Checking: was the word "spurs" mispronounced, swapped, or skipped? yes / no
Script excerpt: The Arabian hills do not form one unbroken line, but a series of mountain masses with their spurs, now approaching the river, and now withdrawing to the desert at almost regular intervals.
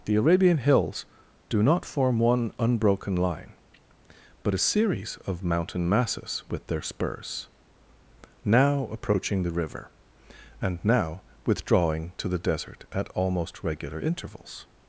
no